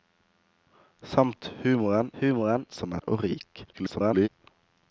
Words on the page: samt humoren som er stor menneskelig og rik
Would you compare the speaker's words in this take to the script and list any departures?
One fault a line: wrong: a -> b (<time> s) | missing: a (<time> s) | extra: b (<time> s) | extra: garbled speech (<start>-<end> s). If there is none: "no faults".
extra: humoren (2.2 s)
missing: stor menneskelig (3.0 s)
extra: garbled speech (3.7-4.3 s)